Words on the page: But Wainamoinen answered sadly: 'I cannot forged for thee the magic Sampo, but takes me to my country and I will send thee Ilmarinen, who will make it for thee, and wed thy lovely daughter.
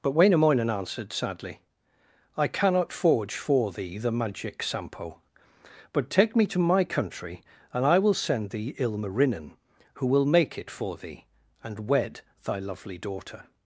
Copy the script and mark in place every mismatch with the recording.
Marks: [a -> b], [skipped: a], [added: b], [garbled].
But Wainamoinen answered sadly: 'I cannot [forged -> forge] for thee the magic Sampo, but [takes -> take] me to my country and I will send thee Ilmarinen, who will make it for thee, and wed thy lovely daughter.